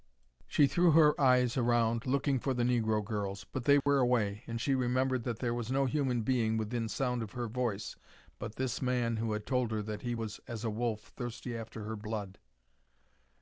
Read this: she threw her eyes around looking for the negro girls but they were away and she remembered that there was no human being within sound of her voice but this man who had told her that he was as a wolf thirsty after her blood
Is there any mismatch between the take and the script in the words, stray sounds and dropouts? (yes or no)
yes